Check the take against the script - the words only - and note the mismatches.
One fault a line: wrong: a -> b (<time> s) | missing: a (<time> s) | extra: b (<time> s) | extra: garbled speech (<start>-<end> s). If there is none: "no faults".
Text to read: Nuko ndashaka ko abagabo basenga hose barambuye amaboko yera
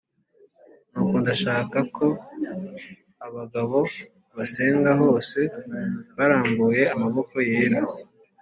no faults